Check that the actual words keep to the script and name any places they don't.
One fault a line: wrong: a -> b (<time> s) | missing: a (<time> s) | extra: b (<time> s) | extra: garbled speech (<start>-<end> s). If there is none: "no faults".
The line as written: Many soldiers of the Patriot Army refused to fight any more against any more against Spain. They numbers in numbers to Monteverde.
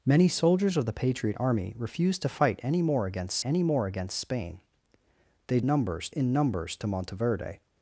no faults